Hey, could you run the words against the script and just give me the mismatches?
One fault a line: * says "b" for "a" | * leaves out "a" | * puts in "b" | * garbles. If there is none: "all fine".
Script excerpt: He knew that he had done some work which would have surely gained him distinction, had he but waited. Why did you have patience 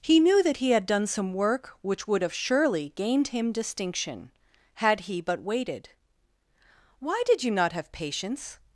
* puts in "not"